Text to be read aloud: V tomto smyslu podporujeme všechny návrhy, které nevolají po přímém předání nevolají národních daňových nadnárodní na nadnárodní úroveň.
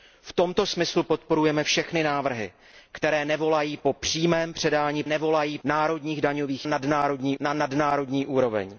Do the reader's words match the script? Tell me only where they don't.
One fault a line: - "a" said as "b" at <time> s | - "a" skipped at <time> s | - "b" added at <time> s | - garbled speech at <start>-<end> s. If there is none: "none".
none